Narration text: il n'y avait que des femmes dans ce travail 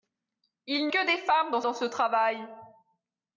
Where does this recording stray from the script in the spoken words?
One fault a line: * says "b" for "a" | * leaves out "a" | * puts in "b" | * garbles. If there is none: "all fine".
* leaves out "n'y avait"
* puts in "dans"